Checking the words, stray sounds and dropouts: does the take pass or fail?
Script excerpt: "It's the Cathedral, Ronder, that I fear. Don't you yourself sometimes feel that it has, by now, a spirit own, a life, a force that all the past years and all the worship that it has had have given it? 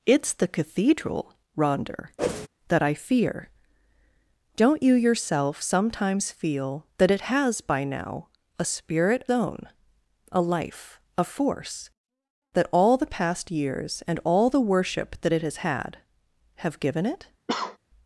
fail